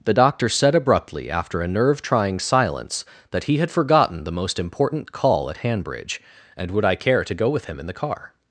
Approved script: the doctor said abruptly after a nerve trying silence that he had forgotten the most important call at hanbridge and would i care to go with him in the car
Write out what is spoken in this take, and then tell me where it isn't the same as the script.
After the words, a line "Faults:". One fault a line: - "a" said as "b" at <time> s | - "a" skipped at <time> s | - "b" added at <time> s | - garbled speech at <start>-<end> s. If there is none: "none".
the doctor said abruptly after a nerve trying silence that he had forgotten the most important call at hanbridge and would i care to go with him in the car
Faults:
none